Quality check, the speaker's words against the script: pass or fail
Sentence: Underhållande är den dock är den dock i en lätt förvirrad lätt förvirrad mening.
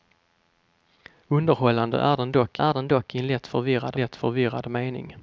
pass